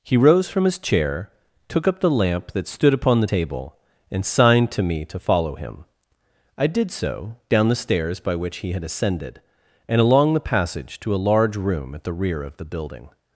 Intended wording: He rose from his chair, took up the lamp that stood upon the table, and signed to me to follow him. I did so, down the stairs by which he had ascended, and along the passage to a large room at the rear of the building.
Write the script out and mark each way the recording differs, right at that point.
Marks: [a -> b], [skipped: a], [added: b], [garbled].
He rose from his chair, took up the lamp that stood upon the table, and signed to me to follow him. I did so, down the stairs by which he had ascended, and along the passage to a large room at the rear of the building.